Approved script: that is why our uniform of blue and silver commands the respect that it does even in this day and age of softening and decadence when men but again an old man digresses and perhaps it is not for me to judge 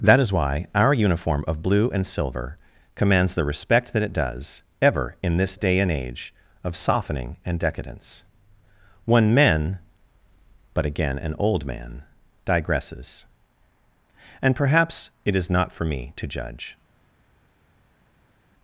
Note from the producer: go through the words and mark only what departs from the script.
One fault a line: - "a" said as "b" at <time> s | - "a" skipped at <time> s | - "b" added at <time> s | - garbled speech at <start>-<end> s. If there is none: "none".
- "even" said as "ever" at 4.8 s